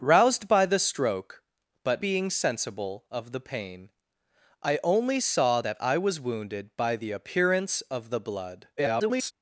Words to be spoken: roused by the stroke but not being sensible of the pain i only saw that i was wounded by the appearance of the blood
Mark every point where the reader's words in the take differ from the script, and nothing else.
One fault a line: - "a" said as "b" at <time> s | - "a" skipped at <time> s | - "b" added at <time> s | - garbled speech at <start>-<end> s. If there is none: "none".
- "not" skipped at 2.0 s
- garbled speech at 8.8-9.3 s